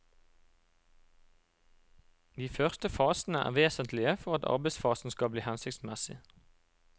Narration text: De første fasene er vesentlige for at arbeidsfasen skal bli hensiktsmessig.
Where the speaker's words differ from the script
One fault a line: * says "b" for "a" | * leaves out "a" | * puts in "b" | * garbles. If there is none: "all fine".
all fine